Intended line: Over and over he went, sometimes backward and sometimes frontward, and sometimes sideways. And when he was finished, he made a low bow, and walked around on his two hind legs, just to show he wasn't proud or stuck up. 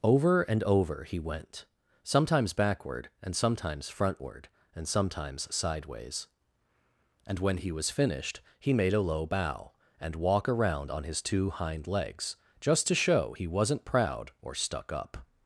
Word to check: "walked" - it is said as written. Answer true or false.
false